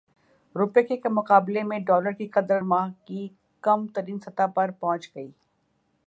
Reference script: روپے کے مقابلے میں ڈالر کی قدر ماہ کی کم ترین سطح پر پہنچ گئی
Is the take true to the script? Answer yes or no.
yes